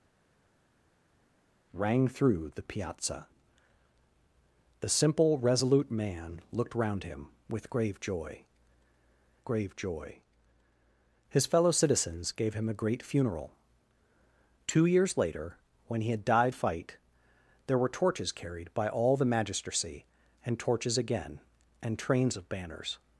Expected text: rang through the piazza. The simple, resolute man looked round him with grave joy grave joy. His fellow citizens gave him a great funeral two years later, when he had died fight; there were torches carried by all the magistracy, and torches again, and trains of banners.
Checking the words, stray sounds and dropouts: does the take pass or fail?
pass